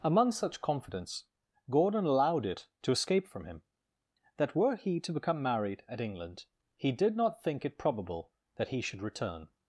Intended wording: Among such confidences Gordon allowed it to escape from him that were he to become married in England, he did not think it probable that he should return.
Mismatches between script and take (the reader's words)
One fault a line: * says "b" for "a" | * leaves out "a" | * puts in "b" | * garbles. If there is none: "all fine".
* says "confidence" for "confidences"
* says "at" for "in"